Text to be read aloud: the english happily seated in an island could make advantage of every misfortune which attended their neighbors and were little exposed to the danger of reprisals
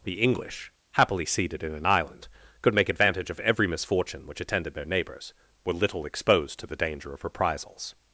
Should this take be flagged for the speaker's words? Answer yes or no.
yes